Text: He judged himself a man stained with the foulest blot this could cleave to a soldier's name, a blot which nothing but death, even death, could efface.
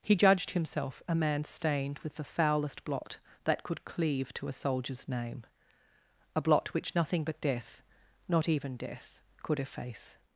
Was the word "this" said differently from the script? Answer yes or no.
yes